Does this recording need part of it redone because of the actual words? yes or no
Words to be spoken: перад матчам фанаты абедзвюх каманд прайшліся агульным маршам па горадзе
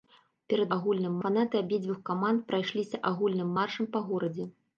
yes